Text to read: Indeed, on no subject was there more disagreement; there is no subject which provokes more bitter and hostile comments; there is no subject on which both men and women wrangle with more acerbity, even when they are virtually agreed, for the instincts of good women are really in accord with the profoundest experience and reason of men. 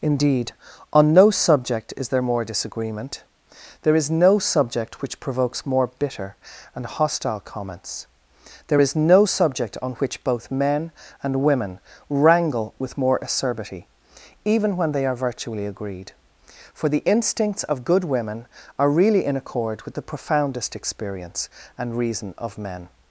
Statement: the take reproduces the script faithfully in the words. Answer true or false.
false